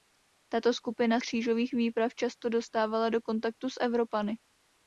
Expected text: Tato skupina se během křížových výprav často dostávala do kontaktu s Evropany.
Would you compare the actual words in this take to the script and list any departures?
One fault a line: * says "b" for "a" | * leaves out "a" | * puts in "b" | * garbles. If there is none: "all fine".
* leaves out "se během"